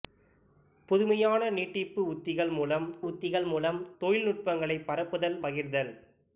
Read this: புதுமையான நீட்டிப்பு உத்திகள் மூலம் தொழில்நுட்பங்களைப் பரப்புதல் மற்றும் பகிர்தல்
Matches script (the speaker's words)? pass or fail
fail